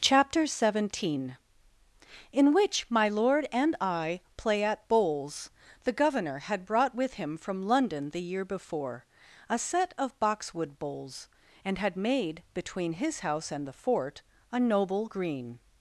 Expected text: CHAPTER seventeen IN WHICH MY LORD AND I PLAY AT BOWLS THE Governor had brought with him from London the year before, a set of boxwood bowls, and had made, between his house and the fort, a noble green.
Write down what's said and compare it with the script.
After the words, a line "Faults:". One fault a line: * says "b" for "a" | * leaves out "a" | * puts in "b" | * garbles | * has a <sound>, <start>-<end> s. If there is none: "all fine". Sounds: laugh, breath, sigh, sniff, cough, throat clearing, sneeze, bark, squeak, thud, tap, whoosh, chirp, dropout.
CHAPTER seventeen IN WHICH MY LORD AND I PLAY AT BOWLS THE Governor had brought with him from London the year before, a set of boxwood bowls, and had made, between his house and the fort, a noble green.
Faults:
all fine